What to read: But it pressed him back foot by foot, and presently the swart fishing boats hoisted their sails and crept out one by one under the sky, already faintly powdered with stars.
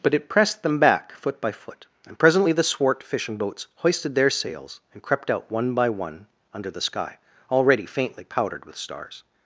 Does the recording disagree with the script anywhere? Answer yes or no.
yes